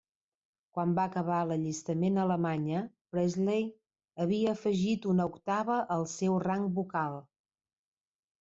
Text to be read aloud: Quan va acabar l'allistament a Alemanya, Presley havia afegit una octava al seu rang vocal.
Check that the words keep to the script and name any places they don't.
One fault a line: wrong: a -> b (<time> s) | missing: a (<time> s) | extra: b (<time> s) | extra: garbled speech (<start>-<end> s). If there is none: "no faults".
no faults